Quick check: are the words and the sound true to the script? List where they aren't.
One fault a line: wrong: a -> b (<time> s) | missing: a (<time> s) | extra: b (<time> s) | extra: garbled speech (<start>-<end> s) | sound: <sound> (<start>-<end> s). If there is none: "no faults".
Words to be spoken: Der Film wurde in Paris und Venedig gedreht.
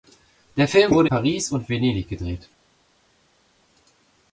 missing: in (1.1 s)